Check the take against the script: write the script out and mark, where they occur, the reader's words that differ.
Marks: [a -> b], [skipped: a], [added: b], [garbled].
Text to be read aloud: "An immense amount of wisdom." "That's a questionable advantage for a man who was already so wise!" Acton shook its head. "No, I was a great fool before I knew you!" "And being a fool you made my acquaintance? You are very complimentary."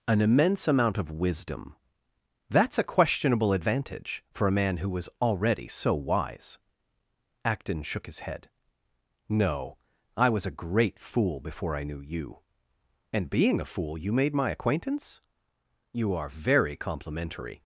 "An immense amount of wisdom." "That's a questionable advantage for a man who was already so wise!" Acton shook [its -> his] head. "No, I was a great fool before I knew you!" "And being a fool you made my acquaintance? You are very complimentary."